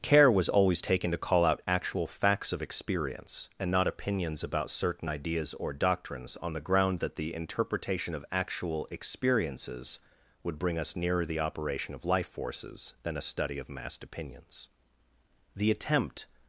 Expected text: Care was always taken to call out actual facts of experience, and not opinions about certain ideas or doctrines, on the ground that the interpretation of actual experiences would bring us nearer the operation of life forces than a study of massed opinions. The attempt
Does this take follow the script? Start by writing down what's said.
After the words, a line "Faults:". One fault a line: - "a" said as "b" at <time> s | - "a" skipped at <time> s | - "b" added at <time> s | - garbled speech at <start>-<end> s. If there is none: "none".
Care was always taken to call out actual facts of experience, and not opinions about certain ideas or doctrines, on the ground that the interpretation of actual experiences would bring us nearer the operation of life forces than a study of massed opinions. The attempt
Faults:
none